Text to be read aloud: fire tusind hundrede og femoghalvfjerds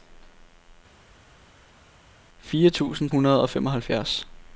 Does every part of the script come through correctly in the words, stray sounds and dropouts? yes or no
yes